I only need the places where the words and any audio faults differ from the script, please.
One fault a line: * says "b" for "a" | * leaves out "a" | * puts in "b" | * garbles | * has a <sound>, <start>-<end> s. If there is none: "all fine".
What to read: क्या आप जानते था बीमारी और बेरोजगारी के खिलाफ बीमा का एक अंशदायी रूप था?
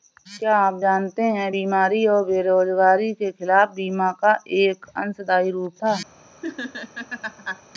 * says "है" for "था"
* has a laugh, 6.4-7.6 s